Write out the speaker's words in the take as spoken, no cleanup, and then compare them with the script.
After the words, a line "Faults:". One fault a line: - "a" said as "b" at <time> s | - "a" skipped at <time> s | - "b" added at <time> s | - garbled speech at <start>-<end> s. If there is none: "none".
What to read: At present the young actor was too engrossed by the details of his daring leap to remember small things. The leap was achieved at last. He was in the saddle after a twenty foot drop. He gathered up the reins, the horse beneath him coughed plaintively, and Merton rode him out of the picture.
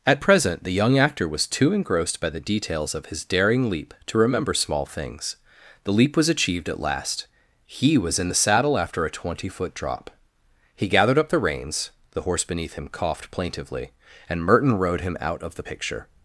At present the young actor was too engrossed by the details of his daring leap to remember small things. The leap was achieved at last. He was in the saddle after a twenty foot drop. He gathered up the reins, the horse beneath him coughed plaintively, and Merton rode him out of the picture.
Faults:
none